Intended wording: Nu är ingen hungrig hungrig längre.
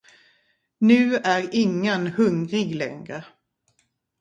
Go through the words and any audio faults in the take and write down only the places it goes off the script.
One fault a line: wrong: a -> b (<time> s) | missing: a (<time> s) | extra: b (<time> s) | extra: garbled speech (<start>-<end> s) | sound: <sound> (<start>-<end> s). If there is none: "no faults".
missing: hungrig (2.7 s)